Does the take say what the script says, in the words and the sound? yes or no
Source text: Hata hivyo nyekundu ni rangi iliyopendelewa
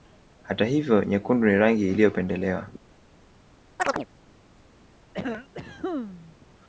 no